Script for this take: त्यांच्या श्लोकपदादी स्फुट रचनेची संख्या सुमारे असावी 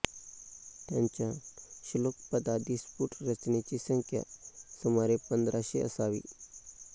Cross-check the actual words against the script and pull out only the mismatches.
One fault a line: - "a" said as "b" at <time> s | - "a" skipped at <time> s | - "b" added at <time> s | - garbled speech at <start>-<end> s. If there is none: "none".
- "पंधराशे" added at 5.3 s